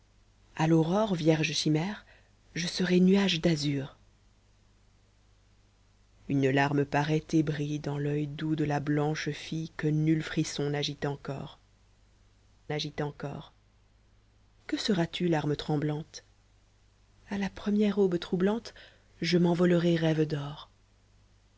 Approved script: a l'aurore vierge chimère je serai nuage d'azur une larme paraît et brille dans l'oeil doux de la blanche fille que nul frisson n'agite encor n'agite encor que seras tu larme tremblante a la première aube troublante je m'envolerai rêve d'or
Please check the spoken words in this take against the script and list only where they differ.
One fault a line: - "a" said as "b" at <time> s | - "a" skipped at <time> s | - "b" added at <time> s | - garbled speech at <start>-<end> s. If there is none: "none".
none